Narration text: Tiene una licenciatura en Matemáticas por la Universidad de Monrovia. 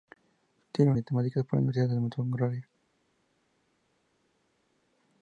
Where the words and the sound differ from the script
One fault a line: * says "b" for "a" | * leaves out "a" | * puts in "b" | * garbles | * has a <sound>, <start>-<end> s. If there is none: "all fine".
* leaves out "una licenciatura en"